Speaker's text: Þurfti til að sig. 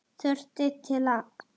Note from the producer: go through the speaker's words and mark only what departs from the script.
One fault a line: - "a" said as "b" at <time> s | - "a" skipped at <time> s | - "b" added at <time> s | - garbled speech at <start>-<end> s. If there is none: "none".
none